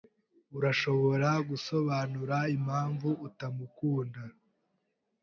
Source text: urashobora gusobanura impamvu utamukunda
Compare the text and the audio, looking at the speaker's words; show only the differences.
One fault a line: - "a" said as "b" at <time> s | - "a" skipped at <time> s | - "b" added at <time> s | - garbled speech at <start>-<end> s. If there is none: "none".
none